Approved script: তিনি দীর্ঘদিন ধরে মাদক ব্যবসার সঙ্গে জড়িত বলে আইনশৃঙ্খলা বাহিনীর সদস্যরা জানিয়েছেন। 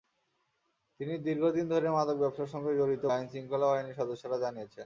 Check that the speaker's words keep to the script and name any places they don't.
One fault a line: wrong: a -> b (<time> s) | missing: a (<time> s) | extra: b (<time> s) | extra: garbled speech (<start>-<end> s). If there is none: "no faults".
missing: বলে (3.0 s)